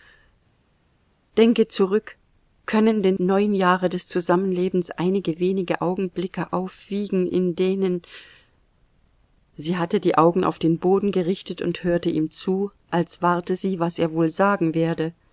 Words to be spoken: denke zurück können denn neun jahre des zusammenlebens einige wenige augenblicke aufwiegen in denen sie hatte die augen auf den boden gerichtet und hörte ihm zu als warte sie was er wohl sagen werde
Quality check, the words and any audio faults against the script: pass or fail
pass